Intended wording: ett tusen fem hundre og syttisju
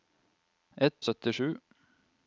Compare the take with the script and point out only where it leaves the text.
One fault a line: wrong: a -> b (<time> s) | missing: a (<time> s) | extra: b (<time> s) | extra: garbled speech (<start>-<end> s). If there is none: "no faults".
missing: tusen fem hundre (1.0 s)